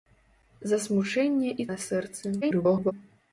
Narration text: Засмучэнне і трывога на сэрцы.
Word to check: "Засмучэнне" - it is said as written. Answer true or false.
true